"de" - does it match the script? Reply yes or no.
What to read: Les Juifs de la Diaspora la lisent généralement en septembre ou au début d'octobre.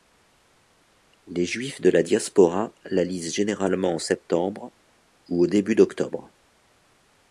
yes